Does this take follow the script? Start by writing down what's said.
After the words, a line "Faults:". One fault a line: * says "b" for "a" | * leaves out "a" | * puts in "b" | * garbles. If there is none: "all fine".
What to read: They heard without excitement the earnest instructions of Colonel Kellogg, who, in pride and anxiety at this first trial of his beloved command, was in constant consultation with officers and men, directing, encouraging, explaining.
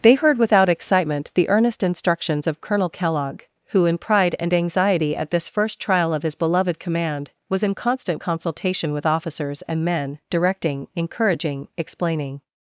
They heard without excitement the earnest instructions of Colonel Kellogg, who, in pride and anxiety at this first trial of his beloved command, was in constant consultation with officers and men, directing, encouraging, explaining.
Faults:
all fine